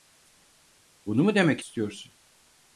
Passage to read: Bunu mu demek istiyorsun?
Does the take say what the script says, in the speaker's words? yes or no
yes